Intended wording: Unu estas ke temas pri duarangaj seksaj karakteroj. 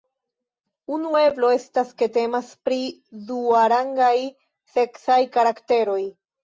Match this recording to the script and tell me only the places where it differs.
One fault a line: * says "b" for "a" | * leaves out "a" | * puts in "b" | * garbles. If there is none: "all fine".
* puts in "eblo"